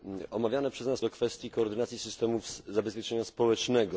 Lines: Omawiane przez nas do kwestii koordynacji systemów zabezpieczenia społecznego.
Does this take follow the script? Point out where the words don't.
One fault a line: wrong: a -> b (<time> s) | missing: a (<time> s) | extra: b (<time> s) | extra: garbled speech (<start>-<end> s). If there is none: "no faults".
no faults